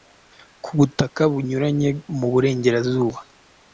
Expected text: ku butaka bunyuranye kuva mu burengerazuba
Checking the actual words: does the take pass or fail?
fail